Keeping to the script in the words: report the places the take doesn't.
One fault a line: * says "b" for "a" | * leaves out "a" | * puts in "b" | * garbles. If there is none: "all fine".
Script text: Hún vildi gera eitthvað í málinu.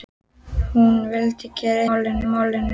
* says "málinu" for "eitthvað"